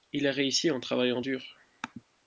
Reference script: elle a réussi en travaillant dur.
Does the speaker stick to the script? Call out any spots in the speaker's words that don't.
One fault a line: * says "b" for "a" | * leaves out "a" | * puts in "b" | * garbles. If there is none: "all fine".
* says "il" for "elle"